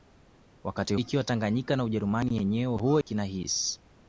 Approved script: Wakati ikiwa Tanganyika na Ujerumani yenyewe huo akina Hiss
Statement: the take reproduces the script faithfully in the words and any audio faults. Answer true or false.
false